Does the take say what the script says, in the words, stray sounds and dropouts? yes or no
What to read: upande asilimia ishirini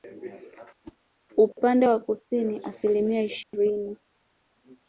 no